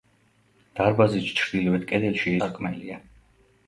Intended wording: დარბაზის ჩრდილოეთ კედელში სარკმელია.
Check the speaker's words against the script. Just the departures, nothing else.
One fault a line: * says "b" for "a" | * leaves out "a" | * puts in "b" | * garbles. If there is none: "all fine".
all fine